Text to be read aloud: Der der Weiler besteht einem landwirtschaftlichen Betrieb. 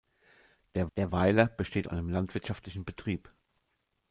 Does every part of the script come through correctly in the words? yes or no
yes